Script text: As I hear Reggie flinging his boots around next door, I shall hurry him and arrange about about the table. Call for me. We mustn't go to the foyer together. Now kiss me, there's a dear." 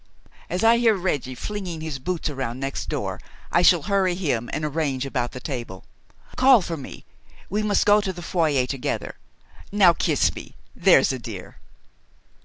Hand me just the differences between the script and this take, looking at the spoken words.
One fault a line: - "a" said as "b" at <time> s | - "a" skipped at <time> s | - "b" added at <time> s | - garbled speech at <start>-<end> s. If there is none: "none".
- "about" skipped at 5.3 s
- "mustn't" said as "must" at 7.6 s